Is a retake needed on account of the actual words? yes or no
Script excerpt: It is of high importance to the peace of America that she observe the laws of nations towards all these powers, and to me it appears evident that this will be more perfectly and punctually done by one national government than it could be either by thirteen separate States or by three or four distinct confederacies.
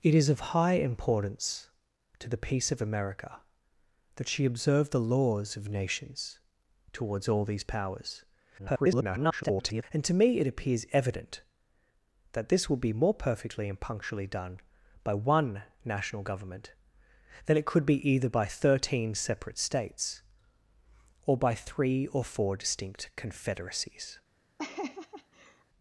yes